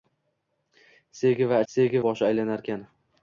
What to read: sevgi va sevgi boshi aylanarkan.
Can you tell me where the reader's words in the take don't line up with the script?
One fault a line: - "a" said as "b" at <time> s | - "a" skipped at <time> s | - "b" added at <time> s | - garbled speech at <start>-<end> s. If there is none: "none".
none